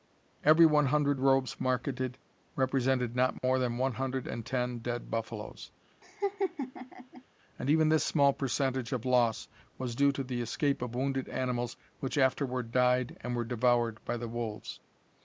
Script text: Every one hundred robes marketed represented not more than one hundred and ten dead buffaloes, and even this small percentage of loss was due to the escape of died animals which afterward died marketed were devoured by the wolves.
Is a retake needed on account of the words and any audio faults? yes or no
yes